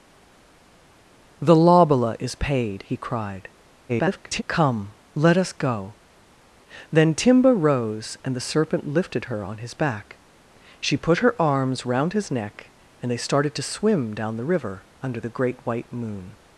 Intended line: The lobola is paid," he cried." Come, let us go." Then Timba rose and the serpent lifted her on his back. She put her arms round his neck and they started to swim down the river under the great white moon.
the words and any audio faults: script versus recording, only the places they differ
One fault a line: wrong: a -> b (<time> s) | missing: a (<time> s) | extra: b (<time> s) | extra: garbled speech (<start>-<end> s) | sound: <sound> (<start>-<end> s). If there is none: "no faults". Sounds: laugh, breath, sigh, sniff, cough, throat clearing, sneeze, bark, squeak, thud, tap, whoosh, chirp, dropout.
extra: garbled speech (3.9-4.4 s)